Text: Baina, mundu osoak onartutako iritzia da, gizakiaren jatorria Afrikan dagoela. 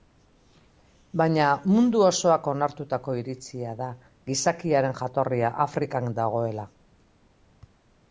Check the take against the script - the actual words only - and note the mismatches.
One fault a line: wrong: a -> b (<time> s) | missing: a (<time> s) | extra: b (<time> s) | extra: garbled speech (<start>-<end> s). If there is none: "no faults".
no faults